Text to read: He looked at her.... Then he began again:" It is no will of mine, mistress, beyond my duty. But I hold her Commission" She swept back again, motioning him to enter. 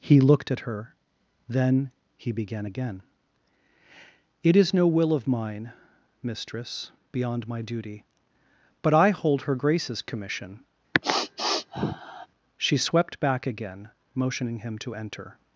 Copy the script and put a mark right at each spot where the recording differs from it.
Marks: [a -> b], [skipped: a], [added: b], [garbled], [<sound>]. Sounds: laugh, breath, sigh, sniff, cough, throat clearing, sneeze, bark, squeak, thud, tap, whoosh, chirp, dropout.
He looked at her.... Then he began again:" It is no will of mine, mistress, beyond my duty. But I hold her [added: Grace's] Commission" [sniff] She swept back again, motioning him to enter.